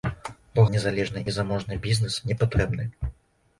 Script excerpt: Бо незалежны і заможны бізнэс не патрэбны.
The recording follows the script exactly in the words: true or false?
true